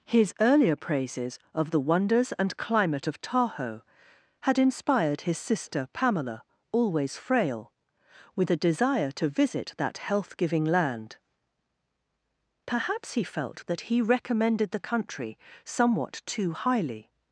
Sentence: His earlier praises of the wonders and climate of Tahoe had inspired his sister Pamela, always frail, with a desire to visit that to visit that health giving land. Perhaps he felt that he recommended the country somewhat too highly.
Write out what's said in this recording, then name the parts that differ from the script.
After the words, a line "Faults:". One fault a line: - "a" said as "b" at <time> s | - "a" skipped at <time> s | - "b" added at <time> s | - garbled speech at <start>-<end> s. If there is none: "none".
His earlier praises of the wonders and climate of Tahoe had inspired his sister Pamela, always frail, with a desire to visit that health giving land. Perhaps he felt that he recommended the country somewhat too highly.
Faults:
- "to visit that" skipped at 10.0 s